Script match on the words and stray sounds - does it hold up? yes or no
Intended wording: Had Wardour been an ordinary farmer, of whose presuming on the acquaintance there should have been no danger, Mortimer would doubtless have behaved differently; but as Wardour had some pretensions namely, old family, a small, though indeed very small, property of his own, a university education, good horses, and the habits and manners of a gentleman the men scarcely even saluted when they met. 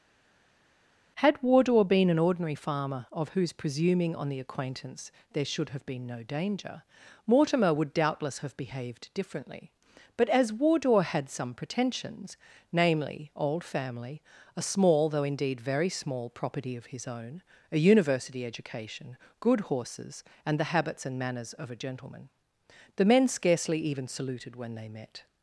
yes